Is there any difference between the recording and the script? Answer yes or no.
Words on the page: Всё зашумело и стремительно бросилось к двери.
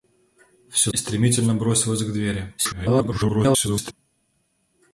yes